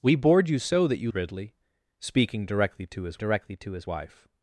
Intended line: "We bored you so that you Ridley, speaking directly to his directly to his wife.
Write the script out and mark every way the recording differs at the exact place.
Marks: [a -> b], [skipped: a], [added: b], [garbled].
"We bored you so that you Ridley, speaking directly to his directly to his wife.